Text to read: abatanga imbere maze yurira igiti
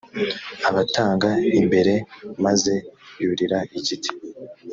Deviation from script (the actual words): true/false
false